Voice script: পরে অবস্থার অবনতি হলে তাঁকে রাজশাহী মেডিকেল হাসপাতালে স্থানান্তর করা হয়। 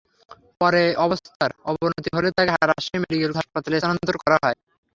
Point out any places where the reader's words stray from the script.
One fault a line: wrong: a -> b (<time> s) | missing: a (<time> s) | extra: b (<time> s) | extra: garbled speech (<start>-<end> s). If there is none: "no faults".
no faults